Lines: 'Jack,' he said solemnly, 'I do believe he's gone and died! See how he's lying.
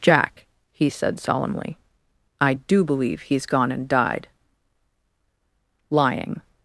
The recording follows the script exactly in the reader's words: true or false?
false